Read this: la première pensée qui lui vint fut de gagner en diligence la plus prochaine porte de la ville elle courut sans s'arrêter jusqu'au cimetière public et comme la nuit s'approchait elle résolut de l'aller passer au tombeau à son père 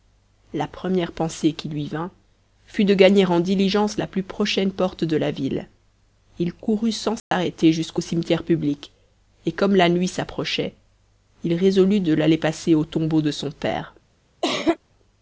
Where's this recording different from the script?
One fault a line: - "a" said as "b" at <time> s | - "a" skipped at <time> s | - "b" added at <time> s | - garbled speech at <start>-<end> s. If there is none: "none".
- "elle" said as "il" at 6.4 s
- "elle" said as "il" at 11.4 s
- "à" said as "de" at 13.2 s